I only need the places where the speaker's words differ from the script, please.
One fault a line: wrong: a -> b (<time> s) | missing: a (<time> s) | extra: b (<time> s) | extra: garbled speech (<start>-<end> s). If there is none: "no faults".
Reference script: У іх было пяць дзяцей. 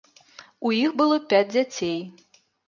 no faults